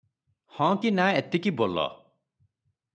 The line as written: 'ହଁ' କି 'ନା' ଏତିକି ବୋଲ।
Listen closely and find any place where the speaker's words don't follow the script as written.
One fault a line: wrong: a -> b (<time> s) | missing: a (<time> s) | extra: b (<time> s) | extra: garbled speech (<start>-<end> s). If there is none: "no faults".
no faults